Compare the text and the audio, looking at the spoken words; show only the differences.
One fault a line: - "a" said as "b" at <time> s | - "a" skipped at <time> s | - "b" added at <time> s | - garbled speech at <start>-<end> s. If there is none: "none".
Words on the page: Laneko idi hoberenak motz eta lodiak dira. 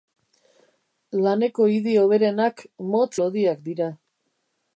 - "eta" skipped at 3.1 s